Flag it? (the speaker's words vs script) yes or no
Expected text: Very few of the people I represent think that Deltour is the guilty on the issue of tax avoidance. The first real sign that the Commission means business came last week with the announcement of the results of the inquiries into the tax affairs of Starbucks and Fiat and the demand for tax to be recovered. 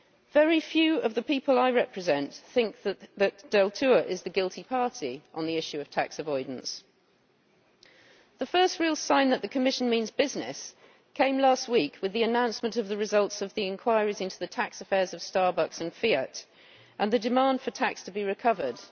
yes